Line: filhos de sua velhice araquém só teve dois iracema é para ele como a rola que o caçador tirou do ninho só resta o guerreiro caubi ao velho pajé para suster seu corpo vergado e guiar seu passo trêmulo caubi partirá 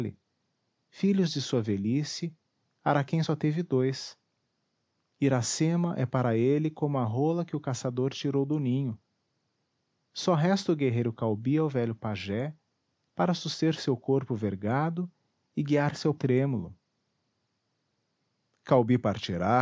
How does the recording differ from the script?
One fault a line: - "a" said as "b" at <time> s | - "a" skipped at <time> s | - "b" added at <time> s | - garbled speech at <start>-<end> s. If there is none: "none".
- "passo" skipped at 16.1 s